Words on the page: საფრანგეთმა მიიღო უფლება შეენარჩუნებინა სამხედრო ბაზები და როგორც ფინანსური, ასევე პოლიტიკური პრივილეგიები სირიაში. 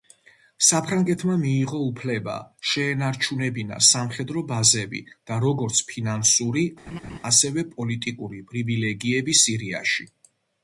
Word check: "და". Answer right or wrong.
right